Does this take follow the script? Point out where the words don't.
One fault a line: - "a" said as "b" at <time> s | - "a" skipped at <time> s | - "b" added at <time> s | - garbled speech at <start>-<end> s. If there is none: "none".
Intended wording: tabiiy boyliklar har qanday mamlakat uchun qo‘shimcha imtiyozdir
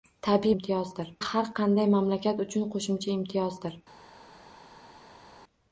- "boyliklar" said as "imtiyozdir" at 0.5 s